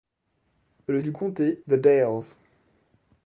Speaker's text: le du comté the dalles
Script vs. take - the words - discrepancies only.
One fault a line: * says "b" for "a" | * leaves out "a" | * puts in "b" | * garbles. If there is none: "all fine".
all fine